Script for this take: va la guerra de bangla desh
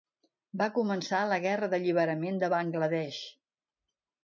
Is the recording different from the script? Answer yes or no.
yes